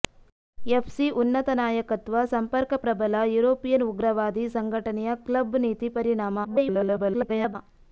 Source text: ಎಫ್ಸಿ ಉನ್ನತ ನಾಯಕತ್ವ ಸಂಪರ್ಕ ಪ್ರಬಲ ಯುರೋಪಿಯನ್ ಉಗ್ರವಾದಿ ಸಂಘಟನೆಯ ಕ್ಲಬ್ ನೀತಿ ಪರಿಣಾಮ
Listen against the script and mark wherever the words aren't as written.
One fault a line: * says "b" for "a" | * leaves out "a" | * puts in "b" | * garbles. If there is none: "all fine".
* garbles